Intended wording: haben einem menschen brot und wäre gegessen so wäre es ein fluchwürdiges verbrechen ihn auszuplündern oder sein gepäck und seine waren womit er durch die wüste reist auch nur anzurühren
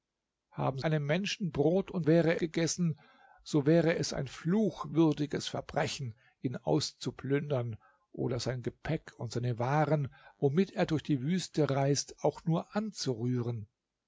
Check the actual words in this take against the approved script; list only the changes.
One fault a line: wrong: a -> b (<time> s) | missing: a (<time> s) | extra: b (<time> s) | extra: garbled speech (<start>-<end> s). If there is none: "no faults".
no faults